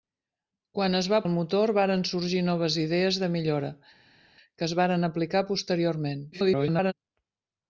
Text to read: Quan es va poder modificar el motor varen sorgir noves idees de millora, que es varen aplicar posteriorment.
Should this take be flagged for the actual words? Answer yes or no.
yes